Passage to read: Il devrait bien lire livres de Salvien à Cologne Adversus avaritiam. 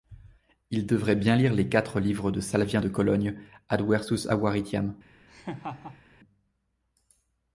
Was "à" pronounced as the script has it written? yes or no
no